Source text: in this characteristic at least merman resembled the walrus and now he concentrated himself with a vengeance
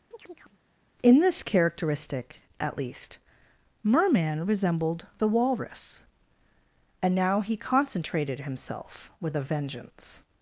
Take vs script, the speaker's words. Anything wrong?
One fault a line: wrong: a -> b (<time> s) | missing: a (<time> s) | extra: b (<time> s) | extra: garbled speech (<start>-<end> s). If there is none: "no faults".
no faults